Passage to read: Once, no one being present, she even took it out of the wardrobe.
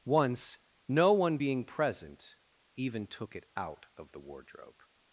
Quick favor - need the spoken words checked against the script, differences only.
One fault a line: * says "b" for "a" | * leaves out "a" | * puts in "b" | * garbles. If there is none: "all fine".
* leaves out "she"